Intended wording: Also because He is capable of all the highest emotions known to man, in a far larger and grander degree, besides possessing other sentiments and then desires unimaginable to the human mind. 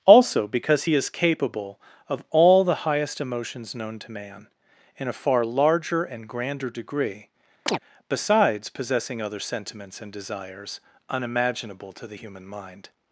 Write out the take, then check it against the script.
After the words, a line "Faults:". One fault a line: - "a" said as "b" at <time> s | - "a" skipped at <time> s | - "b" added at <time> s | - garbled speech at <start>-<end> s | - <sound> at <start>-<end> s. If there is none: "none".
Also because He is capable of all the highest emotions known to man, in a far larger and grander degree, besides possessing other sentiments and desires unimaginable to the human mind.
Faults:
- chirp at 7.7-7.8 s
- "then" skipped at 10.1 s